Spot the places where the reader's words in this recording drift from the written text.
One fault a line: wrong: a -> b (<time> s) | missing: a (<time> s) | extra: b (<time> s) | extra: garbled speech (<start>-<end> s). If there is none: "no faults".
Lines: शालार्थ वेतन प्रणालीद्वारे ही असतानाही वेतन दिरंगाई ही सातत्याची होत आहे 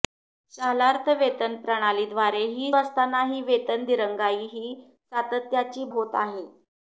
no faults